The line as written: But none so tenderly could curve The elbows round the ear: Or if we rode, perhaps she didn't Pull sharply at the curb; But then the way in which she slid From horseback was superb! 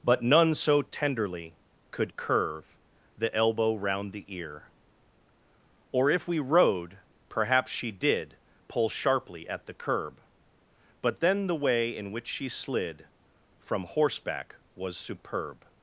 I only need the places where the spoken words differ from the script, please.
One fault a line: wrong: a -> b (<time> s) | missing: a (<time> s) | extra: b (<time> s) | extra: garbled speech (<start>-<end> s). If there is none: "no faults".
wrong: elbows -> elbow (3.4 s)
wrong: didn't -> did (7.9 s)